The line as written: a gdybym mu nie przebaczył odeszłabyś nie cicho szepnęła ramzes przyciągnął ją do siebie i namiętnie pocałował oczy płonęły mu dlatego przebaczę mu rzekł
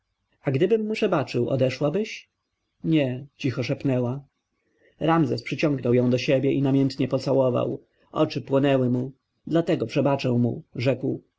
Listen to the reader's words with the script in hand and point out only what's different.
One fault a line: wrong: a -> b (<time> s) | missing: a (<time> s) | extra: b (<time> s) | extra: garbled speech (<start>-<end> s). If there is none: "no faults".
missing: nie (0.9 s)